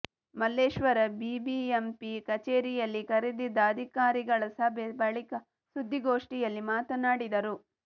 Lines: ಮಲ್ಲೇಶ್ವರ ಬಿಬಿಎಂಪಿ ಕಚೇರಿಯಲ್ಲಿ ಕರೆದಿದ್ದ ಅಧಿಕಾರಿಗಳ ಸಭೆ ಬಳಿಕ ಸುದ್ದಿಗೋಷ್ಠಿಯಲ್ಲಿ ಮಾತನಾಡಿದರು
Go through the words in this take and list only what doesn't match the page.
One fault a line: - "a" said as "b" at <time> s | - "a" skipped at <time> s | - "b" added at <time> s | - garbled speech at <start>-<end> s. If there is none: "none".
none